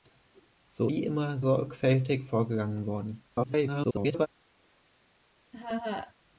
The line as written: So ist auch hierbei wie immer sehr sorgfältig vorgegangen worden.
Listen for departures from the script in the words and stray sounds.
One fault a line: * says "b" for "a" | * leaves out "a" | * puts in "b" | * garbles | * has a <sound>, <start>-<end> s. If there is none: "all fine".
* leaves out "ist auch hierbei"
* leaves out "sehr"
* garbles
* has a laugh, 5.5-6.1 s